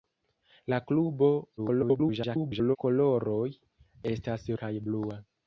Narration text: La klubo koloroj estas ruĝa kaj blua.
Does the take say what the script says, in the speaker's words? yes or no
no